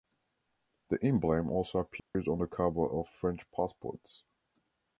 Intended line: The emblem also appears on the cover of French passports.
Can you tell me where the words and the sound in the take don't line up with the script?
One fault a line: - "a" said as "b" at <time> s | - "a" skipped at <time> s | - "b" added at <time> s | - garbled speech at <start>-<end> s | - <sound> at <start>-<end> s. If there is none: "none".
- dropout at 2.0-2.1 s